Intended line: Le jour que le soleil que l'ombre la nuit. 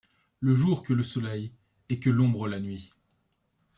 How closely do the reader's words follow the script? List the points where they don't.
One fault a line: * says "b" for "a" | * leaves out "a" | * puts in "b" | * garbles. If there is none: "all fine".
* puts in "et"